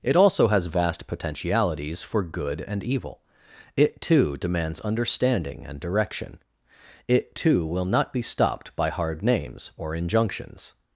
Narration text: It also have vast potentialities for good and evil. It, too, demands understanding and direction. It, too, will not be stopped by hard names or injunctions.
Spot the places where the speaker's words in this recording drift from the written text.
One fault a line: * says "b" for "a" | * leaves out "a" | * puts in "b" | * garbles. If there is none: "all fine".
* says "has" for "have"